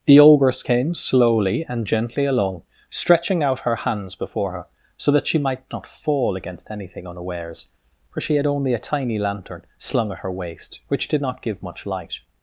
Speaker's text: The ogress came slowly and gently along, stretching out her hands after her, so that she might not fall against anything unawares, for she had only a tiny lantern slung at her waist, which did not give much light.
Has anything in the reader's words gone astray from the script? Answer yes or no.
yes